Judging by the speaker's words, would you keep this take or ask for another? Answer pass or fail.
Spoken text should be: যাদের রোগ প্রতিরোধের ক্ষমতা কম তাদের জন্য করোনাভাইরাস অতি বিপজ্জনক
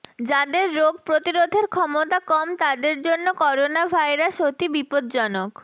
pass